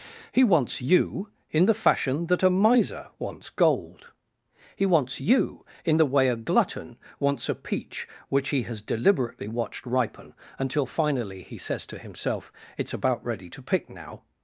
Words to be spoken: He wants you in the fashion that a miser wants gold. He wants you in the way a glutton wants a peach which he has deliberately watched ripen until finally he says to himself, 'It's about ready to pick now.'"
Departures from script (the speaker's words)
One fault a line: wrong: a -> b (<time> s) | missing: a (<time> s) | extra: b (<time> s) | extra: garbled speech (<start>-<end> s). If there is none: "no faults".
no faults